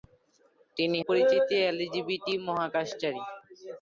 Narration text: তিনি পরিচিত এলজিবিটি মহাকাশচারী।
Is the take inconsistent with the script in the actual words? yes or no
no